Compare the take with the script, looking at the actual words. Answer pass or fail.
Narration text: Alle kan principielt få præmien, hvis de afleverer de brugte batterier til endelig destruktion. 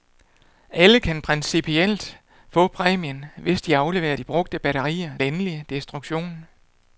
fail